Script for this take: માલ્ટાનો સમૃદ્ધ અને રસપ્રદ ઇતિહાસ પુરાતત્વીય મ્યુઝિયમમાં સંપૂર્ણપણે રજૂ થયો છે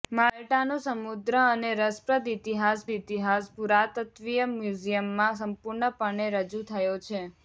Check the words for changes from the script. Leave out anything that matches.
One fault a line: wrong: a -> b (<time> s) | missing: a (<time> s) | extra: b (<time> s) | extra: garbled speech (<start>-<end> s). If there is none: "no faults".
extra: ઇતિહાસ (2.9 s)